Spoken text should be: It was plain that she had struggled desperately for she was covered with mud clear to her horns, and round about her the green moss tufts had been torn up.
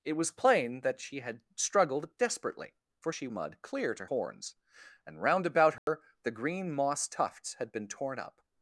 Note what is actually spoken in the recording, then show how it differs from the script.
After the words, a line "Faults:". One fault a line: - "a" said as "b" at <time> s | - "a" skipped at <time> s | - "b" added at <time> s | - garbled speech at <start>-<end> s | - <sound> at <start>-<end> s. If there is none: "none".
It was plain that she had struggled desperately for she mud clear to horns, and round about her the green moss tufts had been torn up.
Faults:
- "was covered with" skipped at 3.3 s
- "her" skipped at 4.0 s
- dropout at 5.8-5.9 s